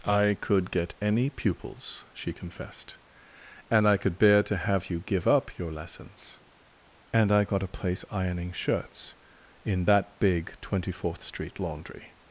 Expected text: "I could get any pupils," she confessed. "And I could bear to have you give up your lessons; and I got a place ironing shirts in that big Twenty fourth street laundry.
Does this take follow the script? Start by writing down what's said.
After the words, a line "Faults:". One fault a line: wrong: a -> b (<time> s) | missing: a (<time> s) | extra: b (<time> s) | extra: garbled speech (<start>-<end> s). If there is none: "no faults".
"I could get any pupils," she confessed. "And I could bear to have you give up your lessons; and I got a place ironing shirts in that big Twenty fourth street laundry.
Faults:
no faults